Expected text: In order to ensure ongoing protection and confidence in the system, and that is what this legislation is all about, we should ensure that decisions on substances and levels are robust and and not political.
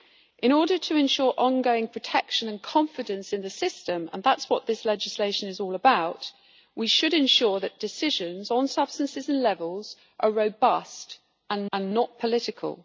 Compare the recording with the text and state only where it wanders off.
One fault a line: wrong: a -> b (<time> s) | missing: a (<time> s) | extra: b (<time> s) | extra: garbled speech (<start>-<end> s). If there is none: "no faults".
no faults